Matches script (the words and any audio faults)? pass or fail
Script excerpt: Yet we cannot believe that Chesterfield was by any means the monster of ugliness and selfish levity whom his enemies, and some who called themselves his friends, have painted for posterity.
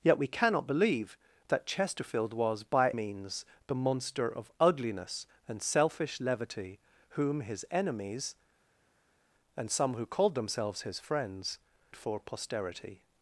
fail